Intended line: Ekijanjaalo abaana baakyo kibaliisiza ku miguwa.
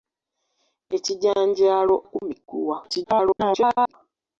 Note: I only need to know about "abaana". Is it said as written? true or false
false